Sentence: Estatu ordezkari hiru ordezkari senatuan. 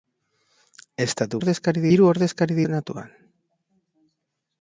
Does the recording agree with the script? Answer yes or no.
yes